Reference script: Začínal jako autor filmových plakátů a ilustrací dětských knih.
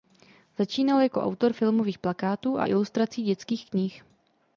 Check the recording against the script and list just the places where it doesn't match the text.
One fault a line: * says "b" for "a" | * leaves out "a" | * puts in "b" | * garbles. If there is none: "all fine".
all fine